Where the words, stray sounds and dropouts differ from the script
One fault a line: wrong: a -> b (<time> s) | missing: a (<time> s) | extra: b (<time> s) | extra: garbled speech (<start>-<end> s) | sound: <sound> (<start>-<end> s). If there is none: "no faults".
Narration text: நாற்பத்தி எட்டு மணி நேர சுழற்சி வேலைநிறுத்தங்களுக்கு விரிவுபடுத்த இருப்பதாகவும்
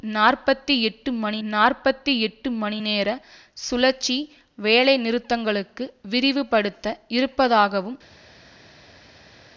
extra: நாற்பத்தி எட்டு மணி (1.5 s)